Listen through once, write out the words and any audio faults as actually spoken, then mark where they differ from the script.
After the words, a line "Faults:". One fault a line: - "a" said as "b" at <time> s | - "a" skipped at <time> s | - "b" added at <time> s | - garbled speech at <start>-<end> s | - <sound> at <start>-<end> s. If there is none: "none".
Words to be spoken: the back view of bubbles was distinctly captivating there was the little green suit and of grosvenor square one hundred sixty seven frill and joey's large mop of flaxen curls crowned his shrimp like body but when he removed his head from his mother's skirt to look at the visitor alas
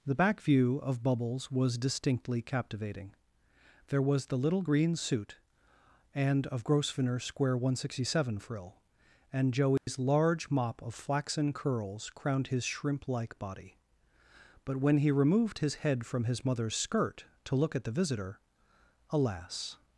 the back view of bubbles was distinctly captivating there was the little green suit and of grosvenor square one hundred sixty seven frill and joey's large mop of flaxen curls crowned his shrimp like body but when he removed his head from his mother's skirt to look at the visitor alas
Faults:
- dropout at 9.8-9.9 s